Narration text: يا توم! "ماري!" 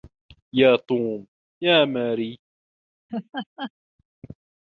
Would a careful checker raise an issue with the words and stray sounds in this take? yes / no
yes